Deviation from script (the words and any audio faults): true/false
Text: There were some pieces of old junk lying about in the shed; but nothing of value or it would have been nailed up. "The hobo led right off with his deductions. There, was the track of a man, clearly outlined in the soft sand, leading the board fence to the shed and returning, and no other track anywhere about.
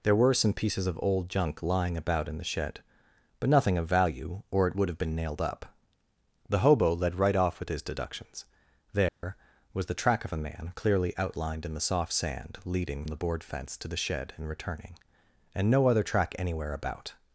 true